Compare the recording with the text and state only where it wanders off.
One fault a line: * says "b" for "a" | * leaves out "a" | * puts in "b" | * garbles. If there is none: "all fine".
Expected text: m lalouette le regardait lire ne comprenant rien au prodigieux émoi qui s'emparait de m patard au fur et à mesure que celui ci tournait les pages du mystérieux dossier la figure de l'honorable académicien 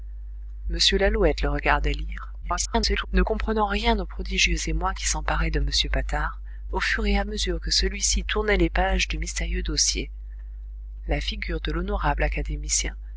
* garbles